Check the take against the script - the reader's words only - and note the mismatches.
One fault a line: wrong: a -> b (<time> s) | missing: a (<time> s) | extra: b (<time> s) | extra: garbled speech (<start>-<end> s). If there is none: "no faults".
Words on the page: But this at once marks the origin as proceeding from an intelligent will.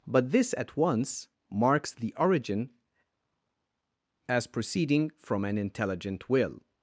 no faults